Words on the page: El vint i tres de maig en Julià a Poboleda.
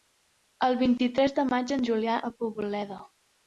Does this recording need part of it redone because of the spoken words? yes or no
no